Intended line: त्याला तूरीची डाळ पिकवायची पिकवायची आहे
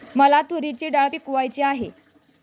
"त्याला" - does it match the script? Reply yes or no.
no